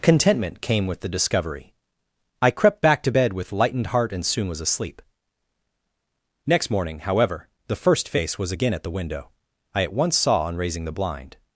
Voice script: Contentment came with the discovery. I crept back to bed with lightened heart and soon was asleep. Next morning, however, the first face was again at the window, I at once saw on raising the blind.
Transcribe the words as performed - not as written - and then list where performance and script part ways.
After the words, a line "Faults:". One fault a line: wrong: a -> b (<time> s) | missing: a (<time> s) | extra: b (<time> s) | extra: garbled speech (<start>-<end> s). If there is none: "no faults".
Contentment came with the discovery. I crept back to bed with lightened heart and soon was asleep. Next morning, however, the first face was again at the window, I at once saw on raising the blind.
Faults:
no faults